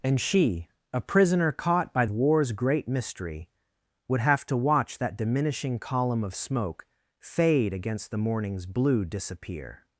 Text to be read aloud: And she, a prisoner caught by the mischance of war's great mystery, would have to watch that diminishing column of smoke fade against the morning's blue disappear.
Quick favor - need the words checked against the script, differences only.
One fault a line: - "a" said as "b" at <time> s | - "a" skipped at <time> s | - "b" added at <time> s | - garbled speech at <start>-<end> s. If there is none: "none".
- "the mischance of" skipped at 2.0 s